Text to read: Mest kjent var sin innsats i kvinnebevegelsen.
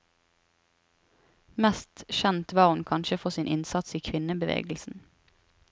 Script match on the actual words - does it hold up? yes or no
no